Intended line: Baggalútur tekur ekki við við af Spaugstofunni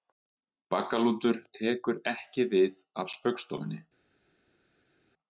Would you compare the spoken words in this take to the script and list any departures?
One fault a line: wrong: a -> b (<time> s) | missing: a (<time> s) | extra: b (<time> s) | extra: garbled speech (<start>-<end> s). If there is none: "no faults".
missing: við (2.8 s)